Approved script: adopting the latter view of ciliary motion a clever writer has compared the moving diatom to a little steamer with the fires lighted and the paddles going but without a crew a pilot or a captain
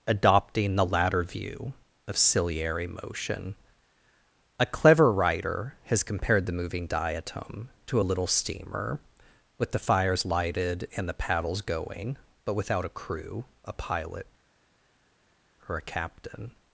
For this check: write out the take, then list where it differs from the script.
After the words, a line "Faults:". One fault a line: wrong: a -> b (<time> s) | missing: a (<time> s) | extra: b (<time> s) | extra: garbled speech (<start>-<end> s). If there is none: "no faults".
adopting the latter view of ciliary motion a clever writer has compared the moving diatom to a little steamer with the fires lighted and the paddles going but without a crew a pilot or a captain
Faults:
no faults